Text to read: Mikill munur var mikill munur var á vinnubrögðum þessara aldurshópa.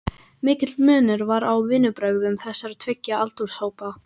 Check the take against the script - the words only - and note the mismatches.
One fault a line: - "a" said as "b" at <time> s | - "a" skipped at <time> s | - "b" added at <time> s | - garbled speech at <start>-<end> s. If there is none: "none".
- "mikill munur var" skipped at 1.4 s
- "tveggja" added at 2.9 s